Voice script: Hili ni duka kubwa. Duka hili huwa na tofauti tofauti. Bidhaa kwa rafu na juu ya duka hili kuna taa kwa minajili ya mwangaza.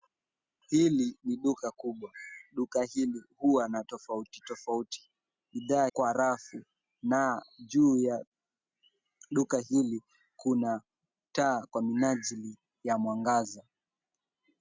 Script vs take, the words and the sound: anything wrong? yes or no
no